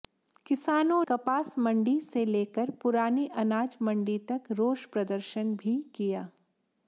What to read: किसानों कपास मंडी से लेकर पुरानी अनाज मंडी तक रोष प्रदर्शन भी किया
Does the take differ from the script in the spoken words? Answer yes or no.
no